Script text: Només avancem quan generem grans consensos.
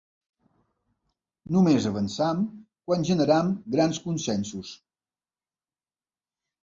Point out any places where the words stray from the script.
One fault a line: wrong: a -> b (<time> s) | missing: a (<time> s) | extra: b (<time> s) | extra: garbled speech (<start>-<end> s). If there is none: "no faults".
no faults